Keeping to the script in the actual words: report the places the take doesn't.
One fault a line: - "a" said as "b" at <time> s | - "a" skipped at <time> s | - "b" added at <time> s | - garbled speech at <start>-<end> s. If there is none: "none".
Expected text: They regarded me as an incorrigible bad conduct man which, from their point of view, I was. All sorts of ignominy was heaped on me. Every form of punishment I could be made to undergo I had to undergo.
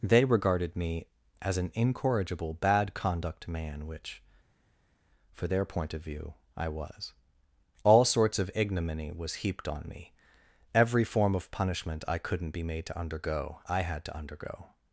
- "from" said as "for" at 5.3 s
- "could" said as "couldn't" at 12.2 s